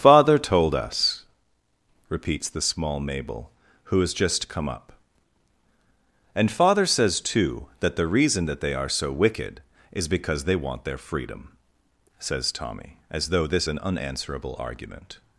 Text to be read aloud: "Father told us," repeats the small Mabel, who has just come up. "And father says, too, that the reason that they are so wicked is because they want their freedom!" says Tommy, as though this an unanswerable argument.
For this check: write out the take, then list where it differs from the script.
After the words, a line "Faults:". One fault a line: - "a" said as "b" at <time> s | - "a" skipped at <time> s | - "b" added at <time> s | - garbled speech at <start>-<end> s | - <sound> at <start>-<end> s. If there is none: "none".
"Father told us," repeats the small Mabel, who has just come up. "And father says, too, that the reason that they are so wicked is because they want their freedom!" says Tommy, as though this an unanswerable argument.
Faults:
none